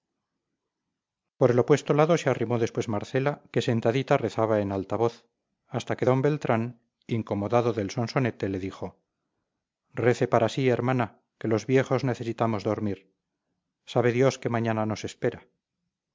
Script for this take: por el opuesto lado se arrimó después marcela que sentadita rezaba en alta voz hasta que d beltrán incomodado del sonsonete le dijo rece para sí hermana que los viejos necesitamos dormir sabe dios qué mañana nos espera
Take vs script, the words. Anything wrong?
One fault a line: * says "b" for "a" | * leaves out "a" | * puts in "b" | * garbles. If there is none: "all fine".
all fine